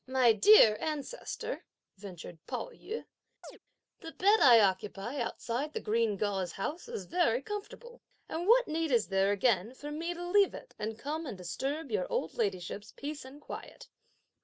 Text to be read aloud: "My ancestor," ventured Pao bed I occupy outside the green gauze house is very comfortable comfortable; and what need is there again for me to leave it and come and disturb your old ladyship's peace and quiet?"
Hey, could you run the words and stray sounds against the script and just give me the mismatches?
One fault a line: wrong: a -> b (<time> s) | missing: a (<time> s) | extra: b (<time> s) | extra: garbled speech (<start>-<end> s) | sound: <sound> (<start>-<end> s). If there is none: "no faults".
extra: dear (0.3 s)
extra: yü the (2.7 s)
sound: chirp (3.4-3.6 s)
missing: comfortable (8.0 s)